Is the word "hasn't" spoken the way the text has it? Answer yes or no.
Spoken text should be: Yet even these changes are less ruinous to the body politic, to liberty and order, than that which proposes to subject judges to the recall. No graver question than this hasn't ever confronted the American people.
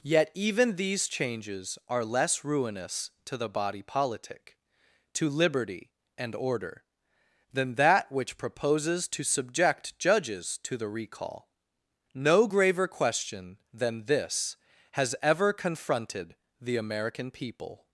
no